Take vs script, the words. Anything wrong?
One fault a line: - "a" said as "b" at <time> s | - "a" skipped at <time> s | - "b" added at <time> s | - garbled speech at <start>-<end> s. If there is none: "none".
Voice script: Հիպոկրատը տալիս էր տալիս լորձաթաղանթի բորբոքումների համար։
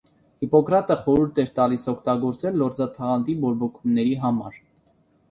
- "տալիս" said as "խորհուրդ" at 1.0 s
- "օգտագործել" added at 1.9 s